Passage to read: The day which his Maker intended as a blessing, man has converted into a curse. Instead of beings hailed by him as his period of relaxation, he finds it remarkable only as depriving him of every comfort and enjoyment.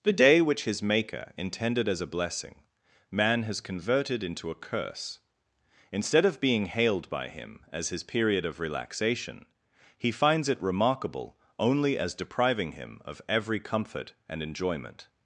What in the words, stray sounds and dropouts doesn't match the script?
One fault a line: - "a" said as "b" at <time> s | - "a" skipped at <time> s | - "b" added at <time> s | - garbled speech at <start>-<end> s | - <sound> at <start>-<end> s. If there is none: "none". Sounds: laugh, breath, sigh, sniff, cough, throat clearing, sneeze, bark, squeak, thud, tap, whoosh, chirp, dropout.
- "beings" said as "being" at 6.4 s